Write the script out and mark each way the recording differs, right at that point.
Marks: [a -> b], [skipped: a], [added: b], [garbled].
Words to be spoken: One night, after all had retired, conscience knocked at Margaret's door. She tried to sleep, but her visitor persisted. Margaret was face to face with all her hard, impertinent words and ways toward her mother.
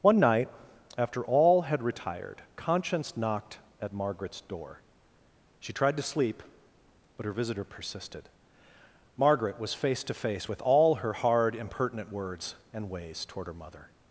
One night, after all had retired, conscience knocked at Margaret's door. She tried to sleep, but her visitor persisted. Margaret was face to face with all her hard, impertinent words and ways toward her mother.